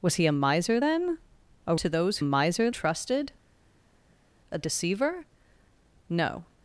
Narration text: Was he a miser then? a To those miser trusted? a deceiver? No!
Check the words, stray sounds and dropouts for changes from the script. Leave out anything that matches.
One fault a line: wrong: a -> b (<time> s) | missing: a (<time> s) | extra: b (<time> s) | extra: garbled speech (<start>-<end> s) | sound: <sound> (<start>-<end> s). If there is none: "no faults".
no faults